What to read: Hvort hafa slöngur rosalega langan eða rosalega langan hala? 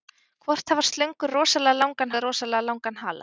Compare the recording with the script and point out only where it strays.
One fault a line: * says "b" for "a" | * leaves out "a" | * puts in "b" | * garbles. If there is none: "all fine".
all fine